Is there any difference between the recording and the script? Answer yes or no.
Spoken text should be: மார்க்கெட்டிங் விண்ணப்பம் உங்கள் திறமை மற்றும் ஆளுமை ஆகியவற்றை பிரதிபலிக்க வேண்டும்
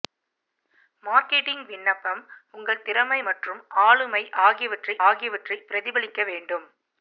yes